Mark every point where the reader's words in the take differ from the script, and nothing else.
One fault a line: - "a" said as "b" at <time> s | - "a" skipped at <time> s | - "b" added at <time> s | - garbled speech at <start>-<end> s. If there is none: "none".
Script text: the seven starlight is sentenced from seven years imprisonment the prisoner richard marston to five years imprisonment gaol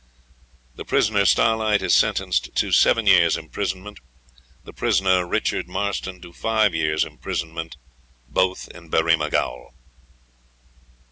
- "seven" said as "prisoner" at 0.8 s
- "from" said as "to" at 2.5 s
- "both in berrima" added at 8.2 s